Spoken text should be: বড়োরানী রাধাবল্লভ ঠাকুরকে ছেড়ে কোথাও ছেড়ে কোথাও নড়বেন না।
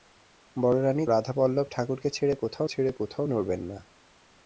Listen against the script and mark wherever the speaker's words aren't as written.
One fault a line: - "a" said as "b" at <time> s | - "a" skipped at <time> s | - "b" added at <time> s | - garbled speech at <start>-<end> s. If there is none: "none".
none